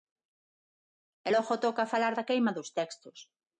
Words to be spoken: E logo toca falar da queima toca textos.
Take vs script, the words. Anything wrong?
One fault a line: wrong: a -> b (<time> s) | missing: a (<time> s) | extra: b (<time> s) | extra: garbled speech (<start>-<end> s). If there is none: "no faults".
wrong: toca -> dos (2.6 s)